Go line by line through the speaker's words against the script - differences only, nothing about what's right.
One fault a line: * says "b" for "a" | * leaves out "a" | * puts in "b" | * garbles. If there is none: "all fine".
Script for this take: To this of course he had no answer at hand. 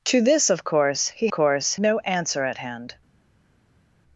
* says "course" for "had"